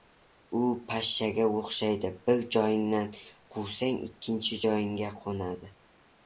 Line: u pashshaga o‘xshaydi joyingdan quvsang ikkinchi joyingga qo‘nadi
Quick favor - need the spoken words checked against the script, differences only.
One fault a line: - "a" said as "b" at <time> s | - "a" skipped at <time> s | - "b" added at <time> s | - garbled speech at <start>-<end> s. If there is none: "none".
- "bir" added at 2.3 s